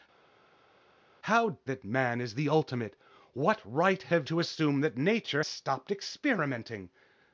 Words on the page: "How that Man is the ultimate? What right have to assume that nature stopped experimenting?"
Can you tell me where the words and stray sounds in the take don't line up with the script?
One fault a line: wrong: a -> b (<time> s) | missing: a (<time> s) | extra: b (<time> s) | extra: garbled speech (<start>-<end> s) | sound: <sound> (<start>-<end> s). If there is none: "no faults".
no faults